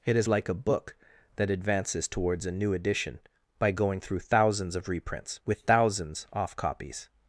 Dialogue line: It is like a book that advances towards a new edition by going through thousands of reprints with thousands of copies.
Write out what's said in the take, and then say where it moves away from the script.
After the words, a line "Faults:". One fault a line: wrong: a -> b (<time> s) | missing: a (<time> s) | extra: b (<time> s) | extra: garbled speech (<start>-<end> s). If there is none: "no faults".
It is like a book that advances towards a new edition by going through thousands of reprints with thousands off copies.
Faults:
wrong: of -> off (6.3 s)